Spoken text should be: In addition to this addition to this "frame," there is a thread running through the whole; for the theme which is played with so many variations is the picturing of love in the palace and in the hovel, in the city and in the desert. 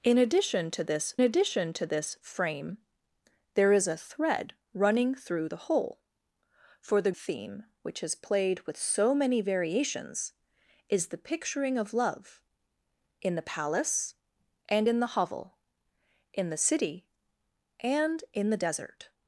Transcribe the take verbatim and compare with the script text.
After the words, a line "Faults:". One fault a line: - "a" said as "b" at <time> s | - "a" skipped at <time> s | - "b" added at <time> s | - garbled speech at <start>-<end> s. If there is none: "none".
In addition to this addition to this "frame," there is a thread running through the whole; for the theme which is played with so many variations is the picturing of love in the palace and in the hovel, in the city and in the desert.
Faults:
none